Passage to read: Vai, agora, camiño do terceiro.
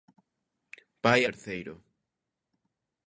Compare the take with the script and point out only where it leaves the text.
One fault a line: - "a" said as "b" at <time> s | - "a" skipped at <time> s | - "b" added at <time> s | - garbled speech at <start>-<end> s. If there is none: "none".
- "agora camiño do" skipped at 1.2 s